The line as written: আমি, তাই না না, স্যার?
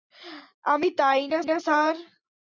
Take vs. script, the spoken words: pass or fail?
pass